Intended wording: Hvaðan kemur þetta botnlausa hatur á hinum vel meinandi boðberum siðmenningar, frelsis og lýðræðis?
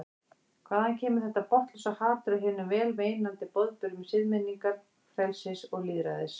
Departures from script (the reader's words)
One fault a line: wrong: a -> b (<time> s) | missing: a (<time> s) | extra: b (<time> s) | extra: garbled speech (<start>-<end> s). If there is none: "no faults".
no faults